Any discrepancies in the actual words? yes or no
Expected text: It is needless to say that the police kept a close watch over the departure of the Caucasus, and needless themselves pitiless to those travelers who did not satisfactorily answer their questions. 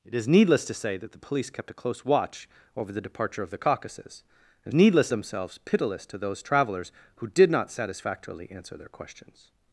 no